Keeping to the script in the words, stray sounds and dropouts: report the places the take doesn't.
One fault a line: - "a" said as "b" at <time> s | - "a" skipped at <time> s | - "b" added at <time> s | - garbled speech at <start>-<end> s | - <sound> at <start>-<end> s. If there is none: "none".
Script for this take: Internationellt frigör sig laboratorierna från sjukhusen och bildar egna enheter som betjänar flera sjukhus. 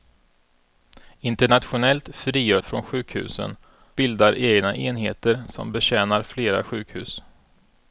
- "sig laboratorierna" skipped at 2.6 s
- "och" skipped at 3.6 s